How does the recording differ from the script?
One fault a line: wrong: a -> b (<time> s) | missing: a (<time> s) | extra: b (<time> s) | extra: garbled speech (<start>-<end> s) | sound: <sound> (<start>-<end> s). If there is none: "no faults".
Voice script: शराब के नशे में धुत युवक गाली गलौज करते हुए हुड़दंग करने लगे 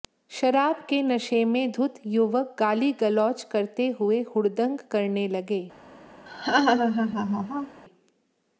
sound: laugh (6.3-7.8 s)